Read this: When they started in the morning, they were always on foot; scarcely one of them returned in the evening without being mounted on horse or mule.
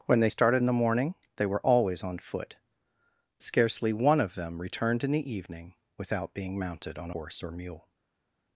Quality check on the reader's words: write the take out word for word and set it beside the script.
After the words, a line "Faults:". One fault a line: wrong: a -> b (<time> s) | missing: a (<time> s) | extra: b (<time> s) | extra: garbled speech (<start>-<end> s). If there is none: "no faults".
When they started in the morning, they were always on foot; scarcely one of them returned in the evening without being mounted on horse or mule.
Faults:
no faults